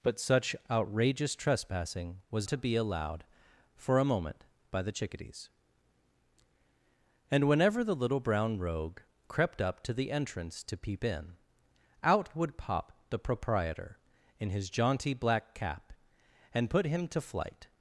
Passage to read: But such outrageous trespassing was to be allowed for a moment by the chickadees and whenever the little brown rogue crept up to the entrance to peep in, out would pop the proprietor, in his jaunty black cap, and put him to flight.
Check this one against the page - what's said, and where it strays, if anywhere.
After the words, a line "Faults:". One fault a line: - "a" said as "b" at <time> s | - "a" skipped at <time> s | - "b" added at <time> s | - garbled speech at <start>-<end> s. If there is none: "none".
But such outrageous trespassing was to be allowed for a moment by the chickadees and whenever the little brown rogue crept up to the entrance to peep in, out would pop the proprietor, in his jaunty black cap, and put him to flight.
Faults:
none